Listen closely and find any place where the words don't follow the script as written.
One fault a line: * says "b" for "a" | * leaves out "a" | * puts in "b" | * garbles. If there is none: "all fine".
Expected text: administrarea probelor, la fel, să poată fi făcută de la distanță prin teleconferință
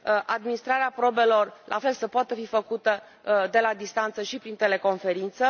* puts in "și"